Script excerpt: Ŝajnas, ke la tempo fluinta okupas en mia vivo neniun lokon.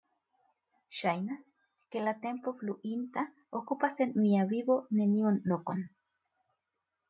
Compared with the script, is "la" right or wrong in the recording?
right